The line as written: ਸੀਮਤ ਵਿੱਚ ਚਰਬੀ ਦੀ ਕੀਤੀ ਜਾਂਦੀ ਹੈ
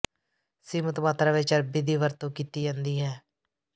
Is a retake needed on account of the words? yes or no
yes